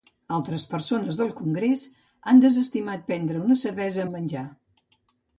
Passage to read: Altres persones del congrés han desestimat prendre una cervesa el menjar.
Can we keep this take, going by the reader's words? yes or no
yes